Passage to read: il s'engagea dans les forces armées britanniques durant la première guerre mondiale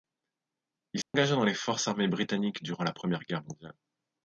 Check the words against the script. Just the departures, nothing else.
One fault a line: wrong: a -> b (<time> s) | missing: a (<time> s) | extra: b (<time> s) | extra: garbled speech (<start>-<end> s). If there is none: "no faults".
no faults